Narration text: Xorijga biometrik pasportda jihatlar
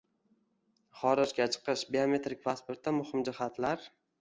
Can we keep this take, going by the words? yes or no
no